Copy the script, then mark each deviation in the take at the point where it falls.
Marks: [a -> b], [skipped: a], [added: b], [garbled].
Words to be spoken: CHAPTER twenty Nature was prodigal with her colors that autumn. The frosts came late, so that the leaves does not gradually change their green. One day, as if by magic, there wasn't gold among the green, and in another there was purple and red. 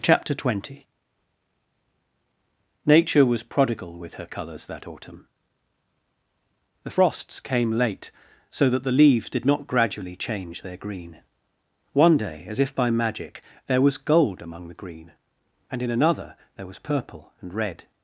CHAPTER twenty Nature was prodigal with her colors that autumn. The frosts came late, so that the leaves [does -> did] not gradually change their green. One day, as if by magic, there [wasn't -> was] gold among the green, and in another there was purple and red.